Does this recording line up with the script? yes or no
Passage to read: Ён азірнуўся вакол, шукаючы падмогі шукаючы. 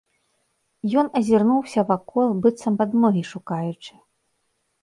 no